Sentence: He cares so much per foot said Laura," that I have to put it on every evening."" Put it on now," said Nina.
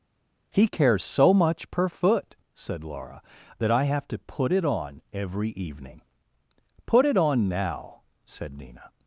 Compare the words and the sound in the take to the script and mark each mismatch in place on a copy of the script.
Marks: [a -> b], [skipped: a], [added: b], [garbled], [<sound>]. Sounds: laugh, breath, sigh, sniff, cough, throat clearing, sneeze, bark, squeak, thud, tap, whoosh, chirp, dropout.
He cares so much per foot said Laura," that I have to put it on every evening."" Put it on now," said Nina.